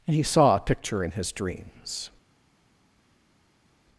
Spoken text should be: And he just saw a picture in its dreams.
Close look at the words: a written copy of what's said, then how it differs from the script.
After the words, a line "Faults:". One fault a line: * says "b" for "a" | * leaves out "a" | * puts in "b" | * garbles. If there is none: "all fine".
And he saw a picture in his dreams.
Faults:
* leaves out "just"
* says "his" for "its"